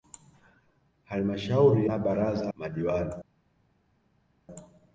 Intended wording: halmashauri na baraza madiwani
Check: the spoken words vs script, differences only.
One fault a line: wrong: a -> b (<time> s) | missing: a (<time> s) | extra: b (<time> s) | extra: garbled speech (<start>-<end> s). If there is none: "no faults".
no faults